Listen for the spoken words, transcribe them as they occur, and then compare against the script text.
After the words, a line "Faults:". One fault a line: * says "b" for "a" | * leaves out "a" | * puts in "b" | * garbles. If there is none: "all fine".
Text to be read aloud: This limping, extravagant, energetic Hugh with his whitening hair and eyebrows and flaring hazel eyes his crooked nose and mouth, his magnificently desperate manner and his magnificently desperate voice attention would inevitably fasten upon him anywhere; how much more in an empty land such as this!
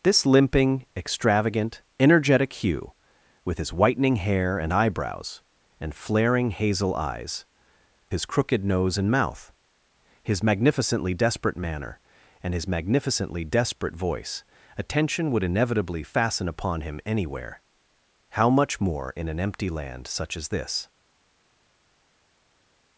This limping, extravagant, energetic Hugh with his whitening hair and eyebrows and flaring hazel eyes his crooked nose and mouth, his magnificently desperate manner and his magnificently desperate voice attention would inevitably fasten upon him anywhere; how much more in an empty land such as this!
Faults:
all fine